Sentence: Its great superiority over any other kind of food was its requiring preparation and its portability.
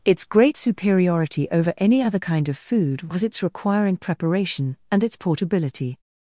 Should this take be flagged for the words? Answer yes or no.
no